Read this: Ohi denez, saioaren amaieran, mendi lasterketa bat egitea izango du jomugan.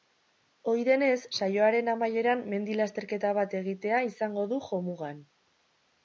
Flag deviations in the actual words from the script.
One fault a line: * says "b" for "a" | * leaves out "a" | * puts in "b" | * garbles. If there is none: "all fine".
all fine